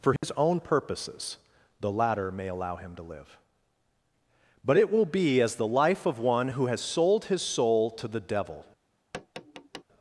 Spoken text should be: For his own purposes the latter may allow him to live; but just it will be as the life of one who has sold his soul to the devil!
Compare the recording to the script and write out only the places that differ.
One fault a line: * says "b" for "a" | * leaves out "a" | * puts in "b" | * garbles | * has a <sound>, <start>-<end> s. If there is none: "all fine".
* has a dropout, 0.2-0.2 s
* leaves out "just"
* has a tap, 9.1-9.8 s